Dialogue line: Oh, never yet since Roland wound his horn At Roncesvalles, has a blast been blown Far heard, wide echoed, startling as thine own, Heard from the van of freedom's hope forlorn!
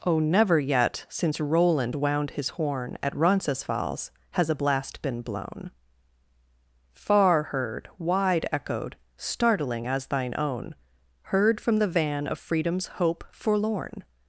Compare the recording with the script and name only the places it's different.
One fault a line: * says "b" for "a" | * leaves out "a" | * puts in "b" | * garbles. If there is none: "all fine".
all fine